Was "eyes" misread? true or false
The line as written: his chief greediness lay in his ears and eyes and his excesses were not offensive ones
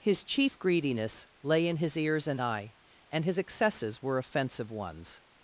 true